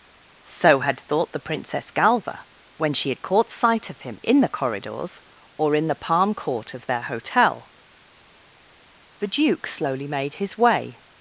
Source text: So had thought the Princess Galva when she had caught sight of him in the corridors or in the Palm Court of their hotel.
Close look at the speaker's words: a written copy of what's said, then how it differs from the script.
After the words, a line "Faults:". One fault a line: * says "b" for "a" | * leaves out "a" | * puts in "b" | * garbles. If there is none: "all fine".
So had thought the Princess Galva when she had caught sight of him in the corridors or in the Palm Court of their hotel. The duke slowly made his way
Faults:
* puts in "The duke slowly made his way"